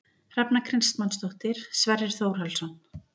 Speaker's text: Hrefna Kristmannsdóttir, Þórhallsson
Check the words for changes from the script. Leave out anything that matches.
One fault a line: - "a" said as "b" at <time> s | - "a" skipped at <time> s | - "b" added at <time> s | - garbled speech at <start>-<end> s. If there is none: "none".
- "Sverrir" added at 1.8 s